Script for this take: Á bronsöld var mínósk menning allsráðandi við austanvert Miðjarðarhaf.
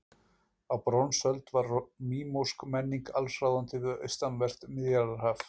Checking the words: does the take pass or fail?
pass